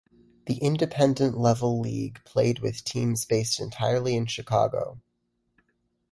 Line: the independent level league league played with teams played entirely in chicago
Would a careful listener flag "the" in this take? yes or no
no